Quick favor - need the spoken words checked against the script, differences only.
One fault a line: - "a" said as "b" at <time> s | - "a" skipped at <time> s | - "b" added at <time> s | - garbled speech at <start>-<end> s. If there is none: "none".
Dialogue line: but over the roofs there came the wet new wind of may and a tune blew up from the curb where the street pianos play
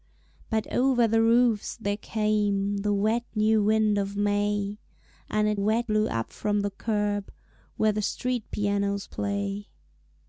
- "tune" said as "wet" at 5.5 s